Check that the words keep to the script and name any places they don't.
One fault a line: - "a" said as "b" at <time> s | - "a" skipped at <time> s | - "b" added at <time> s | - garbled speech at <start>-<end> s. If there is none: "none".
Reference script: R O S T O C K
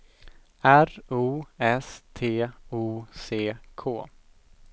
none